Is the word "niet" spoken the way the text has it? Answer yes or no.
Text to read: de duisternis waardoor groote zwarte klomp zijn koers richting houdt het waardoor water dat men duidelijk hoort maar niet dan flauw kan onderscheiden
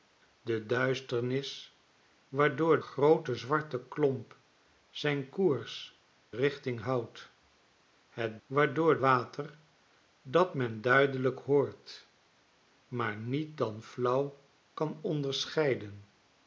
yes